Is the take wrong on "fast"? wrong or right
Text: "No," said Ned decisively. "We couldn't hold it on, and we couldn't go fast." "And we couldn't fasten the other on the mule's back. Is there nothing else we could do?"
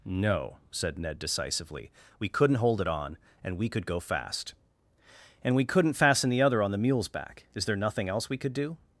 right